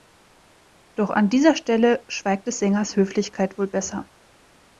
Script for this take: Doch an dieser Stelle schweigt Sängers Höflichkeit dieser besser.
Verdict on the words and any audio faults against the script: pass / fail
fail